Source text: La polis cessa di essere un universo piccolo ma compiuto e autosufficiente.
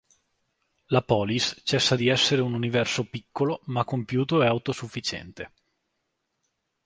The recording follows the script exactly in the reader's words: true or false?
true